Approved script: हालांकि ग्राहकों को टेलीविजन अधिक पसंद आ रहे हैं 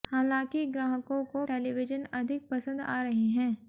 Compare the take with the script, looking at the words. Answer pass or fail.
pass